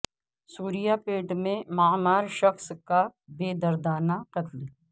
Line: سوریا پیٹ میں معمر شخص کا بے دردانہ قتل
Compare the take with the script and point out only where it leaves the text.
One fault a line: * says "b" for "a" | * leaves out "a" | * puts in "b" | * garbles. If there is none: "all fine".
all fine